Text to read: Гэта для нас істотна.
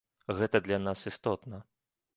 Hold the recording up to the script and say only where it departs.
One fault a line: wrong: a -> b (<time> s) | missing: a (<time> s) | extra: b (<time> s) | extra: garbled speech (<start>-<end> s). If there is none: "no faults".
no faults